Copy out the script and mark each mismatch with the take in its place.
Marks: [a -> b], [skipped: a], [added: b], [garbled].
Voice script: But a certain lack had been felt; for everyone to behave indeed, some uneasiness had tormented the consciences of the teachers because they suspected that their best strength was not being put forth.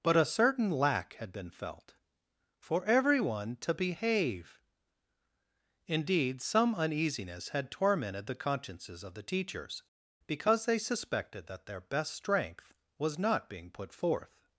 But a certain lack had been felt; for everyone to behave indeed, some uneasiness had tormented the consciences of the teachers because they suspected that their best strength was not being put forth.